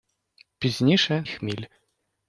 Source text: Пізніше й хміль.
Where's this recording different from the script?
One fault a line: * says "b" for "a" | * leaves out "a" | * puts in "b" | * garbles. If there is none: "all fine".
all fine